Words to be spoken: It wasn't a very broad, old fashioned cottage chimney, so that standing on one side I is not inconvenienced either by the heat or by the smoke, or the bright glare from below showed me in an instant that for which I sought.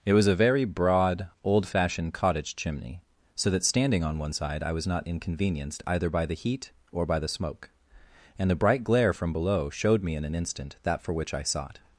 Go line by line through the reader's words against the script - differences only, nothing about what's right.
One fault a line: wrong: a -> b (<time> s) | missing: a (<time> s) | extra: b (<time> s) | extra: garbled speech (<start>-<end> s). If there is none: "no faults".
wrong: wasn't -> was (0.1 s)
wrong: is -> was (4.7 s)
wrong: or -> and (8.4 s)